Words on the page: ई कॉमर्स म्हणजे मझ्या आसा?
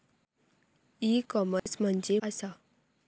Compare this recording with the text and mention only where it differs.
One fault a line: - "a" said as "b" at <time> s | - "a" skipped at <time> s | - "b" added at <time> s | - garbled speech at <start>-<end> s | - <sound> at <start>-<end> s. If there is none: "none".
- dropout at 1.6-1.7 s
- "मझ्या" skipped at 2.2 s